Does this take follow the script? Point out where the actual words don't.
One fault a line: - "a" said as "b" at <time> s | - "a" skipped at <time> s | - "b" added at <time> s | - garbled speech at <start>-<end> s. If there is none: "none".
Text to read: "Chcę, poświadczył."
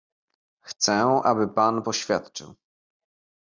- "aby pan" added at 1.2 s